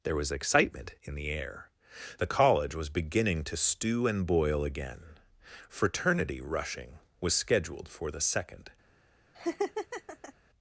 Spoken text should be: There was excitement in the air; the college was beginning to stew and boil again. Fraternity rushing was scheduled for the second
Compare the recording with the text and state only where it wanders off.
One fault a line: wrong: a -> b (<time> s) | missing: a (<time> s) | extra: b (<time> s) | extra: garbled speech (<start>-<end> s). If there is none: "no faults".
no faults